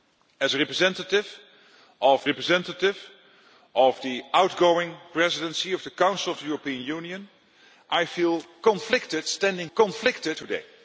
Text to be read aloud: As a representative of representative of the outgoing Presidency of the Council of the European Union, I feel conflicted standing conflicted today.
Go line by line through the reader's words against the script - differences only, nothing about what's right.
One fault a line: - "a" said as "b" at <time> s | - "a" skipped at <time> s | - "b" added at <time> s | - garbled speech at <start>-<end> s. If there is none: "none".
none